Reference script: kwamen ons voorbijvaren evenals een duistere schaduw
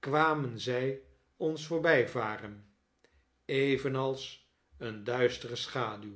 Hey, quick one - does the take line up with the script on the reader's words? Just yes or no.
no